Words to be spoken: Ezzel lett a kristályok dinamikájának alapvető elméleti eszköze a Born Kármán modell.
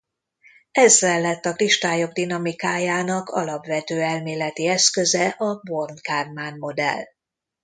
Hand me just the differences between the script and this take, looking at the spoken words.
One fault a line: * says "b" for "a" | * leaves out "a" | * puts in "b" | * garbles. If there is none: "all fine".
all fine